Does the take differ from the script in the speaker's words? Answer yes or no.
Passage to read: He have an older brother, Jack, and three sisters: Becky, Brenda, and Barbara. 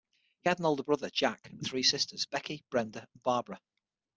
yes